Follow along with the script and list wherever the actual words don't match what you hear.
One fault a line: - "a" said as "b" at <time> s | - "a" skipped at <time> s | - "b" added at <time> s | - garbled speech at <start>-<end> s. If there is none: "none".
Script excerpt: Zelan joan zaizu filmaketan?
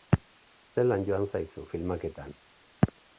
none